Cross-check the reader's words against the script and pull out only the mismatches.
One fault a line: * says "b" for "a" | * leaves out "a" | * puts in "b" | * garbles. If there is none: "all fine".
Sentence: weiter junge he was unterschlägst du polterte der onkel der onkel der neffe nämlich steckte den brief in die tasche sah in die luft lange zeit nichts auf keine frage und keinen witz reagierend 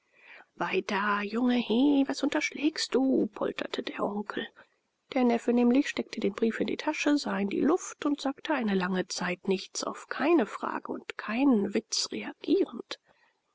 * leaves out "onkel der"
* puts in "und sagte eine"